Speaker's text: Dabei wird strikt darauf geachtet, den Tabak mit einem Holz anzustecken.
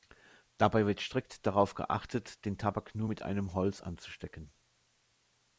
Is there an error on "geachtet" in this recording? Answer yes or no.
no